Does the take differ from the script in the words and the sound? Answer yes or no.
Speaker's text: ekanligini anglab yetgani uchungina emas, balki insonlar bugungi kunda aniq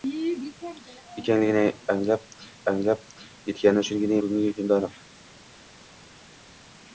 yes